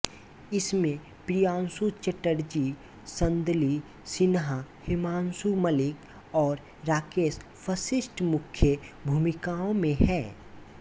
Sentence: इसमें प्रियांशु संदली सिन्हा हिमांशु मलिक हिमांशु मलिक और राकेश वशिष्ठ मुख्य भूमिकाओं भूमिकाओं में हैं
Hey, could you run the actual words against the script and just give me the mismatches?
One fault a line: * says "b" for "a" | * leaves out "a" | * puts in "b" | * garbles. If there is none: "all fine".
* puts in "चटर्जी"
* leaves out "हिमांशु मलिक"
* leaves out "भूमिकाओं"